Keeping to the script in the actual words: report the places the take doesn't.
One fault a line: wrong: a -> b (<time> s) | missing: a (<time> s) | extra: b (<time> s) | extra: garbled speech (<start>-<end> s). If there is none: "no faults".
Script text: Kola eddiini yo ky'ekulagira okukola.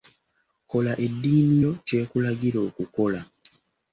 no faults